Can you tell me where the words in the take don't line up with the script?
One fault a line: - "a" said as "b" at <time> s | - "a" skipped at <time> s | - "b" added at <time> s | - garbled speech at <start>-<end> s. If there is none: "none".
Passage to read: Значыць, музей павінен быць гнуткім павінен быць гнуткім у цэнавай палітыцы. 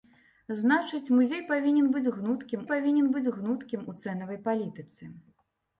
none